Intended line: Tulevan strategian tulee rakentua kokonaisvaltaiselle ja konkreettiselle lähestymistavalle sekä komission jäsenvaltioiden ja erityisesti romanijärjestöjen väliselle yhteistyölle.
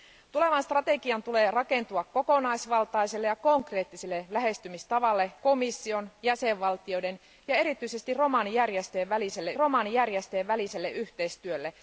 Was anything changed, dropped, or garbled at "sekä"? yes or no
yes